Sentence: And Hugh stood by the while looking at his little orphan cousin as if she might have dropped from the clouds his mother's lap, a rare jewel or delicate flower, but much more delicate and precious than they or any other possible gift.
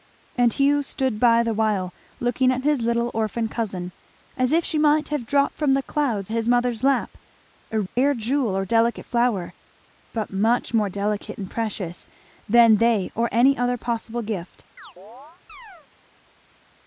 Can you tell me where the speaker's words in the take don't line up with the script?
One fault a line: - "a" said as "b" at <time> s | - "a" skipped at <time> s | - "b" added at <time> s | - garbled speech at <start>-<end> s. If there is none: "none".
none